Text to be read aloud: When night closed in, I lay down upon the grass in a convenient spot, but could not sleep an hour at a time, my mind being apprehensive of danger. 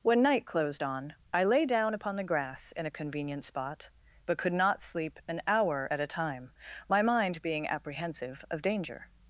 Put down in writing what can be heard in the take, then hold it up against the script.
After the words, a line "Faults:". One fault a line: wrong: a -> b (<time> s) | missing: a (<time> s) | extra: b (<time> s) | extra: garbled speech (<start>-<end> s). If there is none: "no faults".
When night closed on, I lay down upon the grass in a convenient spot, but could not sleep an hour at a time, my mind being apprehensive of danger.
Faults:
wrong: in -> on (0.8 s)